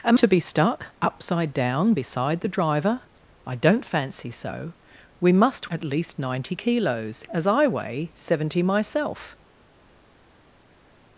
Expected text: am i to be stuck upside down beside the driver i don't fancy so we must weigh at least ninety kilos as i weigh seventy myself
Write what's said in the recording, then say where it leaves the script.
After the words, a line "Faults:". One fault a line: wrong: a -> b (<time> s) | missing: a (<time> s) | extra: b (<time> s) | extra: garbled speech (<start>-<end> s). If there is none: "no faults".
am to be stuck upside down beside the driver i don't fancy so we must at least ninety kilos as i weigh seventy myself
Faults:
missing: i (0.2 s)
missing: weigh (5.7 s)